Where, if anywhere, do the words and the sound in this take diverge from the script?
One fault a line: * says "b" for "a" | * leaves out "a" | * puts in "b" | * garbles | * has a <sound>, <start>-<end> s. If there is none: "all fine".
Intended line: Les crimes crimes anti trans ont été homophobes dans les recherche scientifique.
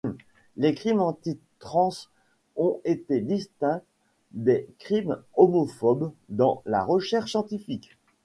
* leaves out "crimes"
* puts in "distincts des crimes"
* says "la" for "les"